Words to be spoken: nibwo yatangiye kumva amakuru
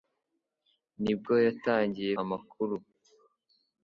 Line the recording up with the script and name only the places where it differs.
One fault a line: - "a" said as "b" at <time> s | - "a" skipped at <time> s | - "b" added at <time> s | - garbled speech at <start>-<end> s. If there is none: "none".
- "kumva" skipped at 2.1 s